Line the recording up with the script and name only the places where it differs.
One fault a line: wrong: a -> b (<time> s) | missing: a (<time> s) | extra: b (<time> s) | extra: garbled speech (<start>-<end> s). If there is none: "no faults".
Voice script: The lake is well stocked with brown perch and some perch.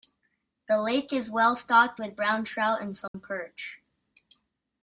wrong: perch -> trout (2.4 s)